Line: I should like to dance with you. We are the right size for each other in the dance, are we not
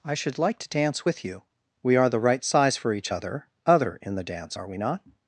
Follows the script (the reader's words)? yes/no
no